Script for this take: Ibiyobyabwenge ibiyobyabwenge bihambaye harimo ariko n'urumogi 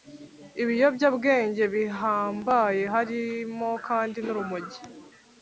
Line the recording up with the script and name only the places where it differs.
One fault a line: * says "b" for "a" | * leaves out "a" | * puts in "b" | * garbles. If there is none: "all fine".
* leaves out "ibiyobyabwenge"
* says "kandi" for "ariko"